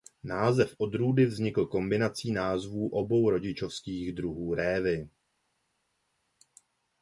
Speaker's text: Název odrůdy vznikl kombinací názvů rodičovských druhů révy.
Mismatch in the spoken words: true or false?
true